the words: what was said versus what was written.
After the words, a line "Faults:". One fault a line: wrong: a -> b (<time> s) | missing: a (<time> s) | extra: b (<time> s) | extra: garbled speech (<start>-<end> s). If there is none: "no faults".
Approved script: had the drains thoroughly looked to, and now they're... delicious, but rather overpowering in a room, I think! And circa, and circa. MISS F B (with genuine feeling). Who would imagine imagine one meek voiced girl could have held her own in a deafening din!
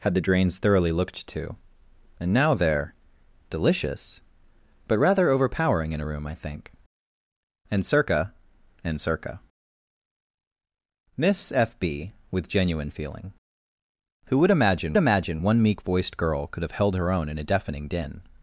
had the drains thoroughly looked to, and now they're... delicious, but rather overpowering in a room, I think! And circa, and circa. MISS F B (with genuine feeling). Who would imagine imagine one meek voiced girl could have held her own in a deafening din!
Faults:
no faults